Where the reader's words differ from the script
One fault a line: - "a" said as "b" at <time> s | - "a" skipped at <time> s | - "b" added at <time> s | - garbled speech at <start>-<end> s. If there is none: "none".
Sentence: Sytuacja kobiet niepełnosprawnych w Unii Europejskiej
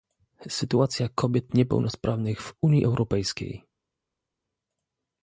none